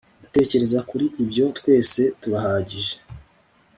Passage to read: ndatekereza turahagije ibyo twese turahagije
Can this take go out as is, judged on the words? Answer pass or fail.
fail